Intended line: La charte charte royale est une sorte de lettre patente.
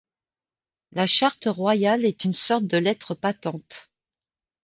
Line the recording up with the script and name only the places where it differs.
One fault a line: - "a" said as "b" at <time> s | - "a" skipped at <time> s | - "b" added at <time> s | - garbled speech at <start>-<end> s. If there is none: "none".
- "charte" skipped at 1.4 s